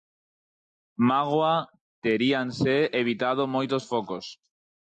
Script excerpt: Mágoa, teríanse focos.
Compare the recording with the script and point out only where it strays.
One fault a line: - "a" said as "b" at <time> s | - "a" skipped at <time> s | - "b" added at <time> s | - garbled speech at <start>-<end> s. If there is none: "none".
- "evitado moitos" added at 3.0 s